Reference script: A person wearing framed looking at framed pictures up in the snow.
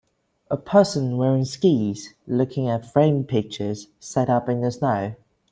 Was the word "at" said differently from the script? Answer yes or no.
no